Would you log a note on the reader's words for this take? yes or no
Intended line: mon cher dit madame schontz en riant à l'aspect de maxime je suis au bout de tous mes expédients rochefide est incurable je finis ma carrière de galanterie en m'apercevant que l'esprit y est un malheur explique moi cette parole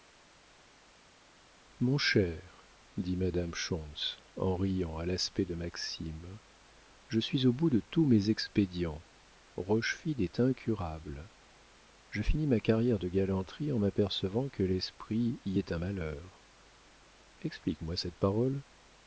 no